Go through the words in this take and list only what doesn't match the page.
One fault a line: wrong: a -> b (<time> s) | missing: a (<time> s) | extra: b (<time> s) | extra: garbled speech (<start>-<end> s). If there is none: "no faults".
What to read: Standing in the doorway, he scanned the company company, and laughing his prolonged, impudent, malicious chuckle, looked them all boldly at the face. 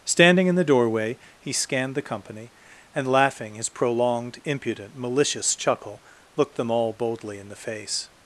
missing: company (2.5 s)
wrong: at -> in (7.4 s)